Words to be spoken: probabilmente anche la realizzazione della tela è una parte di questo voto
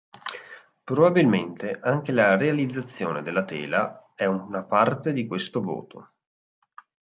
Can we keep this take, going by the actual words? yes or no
yes